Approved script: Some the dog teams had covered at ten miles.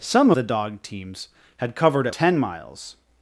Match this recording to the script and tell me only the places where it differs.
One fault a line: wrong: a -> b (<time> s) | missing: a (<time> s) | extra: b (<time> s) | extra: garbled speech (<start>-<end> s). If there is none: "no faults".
no faults